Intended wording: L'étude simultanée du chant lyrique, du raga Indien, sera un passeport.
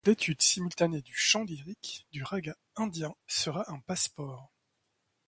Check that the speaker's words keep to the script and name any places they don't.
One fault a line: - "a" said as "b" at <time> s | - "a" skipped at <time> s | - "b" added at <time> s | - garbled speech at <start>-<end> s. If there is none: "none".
none